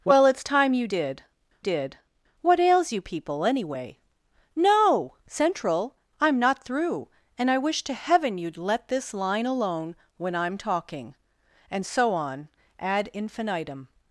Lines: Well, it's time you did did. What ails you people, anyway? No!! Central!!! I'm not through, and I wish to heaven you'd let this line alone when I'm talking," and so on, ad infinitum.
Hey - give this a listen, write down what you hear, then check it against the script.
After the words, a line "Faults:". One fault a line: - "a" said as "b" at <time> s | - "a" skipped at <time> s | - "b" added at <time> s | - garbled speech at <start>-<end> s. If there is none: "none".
Well, it's time you did did. What ails you people, anyway? No!! Central!!! I'm not through, and I wish to heaven you'd let this line alone when I'm talking," and so on, ad infinitum.
Faults:
none